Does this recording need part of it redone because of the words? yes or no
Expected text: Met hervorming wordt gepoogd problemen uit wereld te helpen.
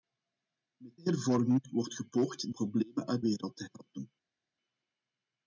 no